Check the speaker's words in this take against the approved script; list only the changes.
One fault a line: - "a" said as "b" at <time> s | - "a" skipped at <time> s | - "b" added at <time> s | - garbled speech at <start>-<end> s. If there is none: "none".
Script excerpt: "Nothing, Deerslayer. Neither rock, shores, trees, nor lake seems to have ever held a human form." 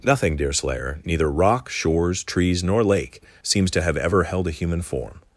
none